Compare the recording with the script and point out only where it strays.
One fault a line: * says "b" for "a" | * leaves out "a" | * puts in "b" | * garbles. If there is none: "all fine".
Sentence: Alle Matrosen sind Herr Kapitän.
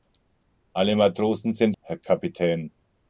all fine